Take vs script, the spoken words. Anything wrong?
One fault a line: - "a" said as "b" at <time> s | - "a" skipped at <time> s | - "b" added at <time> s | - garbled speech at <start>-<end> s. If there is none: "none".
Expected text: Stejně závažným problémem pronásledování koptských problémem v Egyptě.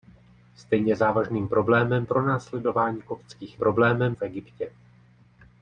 none